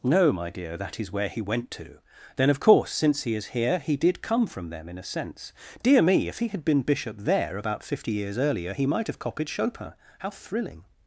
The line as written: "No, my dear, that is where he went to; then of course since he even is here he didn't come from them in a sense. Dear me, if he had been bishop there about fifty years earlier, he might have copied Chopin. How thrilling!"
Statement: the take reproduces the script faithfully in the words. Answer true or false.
false